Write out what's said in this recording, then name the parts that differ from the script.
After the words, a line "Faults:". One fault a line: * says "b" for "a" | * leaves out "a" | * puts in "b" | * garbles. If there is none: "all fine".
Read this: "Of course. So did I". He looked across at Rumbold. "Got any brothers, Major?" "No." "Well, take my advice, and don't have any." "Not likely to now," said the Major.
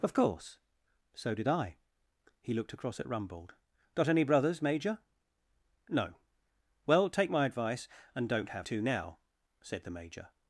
"Of course. So did I". He looked across at Rumbold. "Got any brothers, Major?" "No." "Well, take my advice, and don't have to now," said the Major.
Faults:
* leaves out "any Not likely"